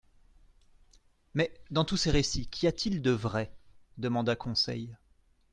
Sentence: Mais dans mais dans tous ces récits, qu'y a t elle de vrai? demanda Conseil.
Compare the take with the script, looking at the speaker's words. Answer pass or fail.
fail